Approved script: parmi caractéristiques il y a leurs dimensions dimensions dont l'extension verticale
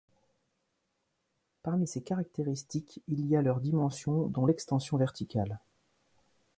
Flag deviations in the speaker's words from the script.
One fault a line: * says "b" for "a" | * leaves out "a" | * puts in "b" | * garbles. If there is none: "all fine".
* puts in "ces"
* leaves out "dimensions"